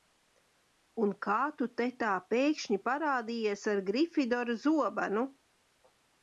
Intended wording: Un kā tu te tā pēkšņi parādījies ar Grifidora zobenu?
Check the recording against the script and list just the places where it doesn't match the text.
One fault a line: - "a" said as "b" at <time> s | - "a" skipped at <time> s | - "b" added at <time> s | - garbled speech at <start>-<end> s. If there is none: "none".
none